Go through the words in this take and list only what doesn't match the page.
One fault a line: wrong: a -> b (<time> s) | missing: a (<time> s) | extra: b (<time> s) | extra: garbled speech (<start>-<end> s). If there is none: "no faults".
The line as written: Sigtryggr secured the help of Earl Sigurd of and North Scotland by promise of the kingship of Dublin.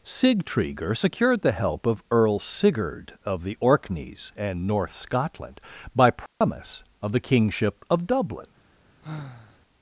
extra: the Orkneys (3.4 s)